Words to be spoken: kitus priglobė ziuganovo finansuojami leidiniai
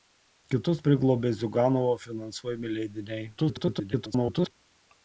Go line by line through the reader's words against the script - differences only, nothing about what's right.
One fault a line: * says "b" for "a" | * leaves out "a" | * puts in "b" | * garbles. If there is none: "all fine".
* garbles